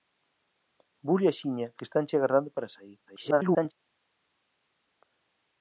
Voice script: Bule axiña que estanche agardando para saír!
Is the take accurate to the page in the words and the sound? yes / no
no